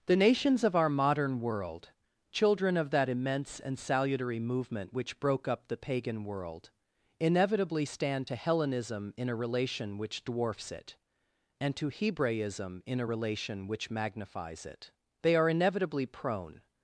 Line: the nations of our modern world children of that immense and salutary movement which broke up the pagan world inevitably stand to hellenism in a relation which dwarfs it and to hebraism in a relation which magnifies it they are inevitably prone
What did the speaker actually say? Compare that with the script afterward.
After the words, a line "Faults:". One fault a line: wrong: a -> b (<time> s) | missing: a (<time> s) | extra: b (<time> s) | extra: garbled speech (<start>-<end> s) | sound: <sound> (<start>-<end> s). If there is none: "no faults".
the nations of our modern world children of that immense and salutary movement which broke up the pagan world inevitably stand to hellenism in a relation which dwarfs it and to hebraism in a relation which magnifies it they are inevitably prone
Faults:
no faults